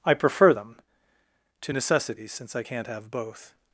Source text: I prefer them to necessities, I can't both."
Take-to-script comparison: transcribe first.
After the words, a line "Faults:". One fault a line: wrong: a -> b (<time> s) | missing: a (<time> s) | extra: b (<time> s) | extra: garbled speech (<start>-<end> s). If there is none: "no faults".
I prefer them to necessities, since I can't have both."
Faults:
extra: since (2.3 s)
extra: have (2.9 s)